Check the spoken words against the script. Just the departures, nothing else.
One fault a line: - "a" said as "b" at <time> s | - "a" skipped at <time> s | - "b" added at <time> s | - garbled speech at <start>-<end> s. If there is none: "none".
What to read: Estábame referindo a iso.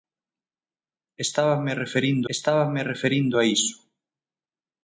- "estábame referindo" added at 2.3 s